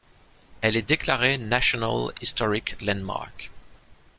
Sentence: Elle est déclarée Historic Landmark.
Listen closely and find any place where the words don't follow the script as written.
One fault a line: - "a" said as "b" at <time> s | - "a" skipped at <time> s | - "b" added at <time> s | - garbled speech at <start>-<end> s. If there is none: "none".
- "National" added at 1.4 s